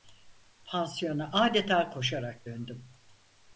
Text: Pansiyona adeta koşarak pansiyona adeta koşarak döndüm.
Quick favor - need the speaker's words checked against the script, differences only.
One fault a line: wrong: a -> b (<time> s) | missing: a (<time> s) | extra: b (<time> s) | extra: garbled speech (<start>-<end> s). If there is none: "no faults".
missing: pansiyona adeta koşarak (2.5 s)